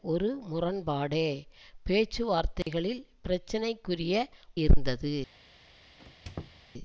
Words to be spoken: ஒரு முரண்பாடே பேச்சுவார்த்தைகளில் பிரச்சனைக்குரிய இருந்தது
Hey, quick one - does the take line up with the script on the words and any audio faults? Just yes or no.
no